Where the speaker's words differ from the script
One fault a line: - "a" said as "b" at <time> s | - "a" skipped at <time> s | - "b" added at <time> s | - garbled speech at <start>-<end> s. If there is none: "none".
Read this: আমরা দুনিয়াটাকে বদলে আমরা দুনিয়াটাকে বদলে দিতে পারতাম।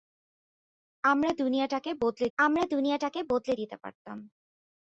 none